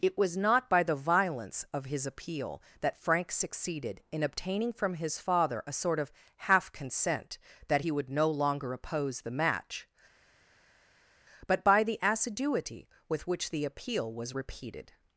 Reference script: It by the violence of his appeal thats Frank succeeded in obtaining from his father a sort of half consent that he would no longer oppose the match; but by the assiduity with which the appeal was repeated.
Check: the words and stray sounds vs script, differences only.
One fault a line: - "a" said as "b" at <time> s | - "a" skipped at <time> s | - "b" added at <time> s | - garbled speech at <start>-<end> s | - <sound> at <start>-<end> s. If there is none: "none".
- "was not" added at 0.2 s
- "thats" said as "that" at 2.8 s